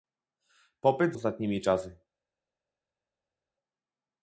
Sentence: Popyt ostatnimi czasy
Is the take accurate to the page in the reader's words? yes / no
yes